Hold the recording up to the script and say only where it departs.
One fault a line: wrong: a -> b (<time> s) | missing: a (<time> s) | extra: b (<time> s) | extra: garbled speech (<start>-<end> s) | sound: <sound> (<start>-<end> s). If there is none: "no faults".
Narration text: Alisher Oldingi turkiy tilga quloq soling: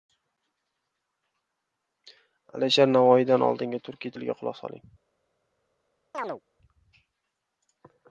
extra: Navoiydan (3.0 s)
sound: chirp (6.1-6.4 s)